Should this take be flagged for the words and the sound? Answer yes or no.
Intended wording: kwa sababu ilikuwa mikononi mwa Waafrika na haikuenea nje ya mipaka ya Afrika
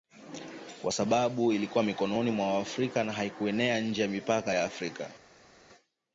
no